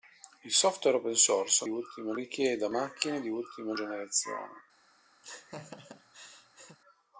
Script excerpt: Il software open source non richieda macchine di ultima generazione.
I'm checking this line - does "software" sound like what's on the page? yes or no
yes